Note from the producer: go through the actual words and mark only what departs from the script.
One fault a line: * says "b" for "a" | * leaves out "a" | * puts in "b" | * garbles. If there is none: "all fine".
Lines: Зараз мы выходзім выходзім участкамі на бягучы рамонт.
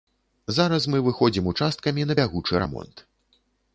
* leaves out "выходзім"